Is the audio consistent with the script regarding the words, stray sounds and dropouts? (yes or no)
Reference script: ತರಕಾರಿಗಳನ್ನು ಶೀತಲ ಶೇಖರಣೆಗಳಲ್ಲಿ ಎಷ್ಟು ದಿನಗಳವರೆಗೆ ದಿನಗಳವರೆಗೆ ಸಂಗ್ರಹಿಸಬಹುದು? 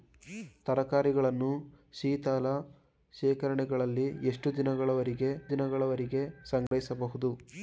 no